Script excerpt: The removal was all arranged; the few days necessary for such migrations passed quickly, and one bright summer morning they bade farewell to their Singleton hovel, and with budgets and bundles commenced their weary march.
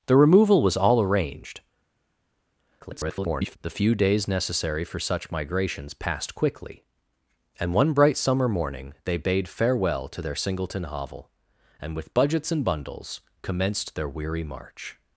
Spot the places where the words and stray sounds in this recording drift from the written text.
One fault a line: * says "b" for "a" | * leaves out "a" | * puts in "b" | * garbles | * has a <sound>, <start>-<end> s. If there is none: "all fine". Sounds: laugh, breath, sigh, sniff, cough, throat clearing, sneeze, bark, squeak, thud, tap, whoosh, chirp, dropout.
* garbles